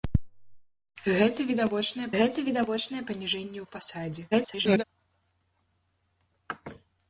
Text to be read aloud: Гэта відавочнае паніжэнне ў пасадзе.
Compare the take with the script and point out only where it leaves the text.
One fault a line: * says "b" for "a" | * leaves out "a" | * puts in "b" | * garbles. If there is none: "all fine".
* puts in "гэта відавочнае"
* garbles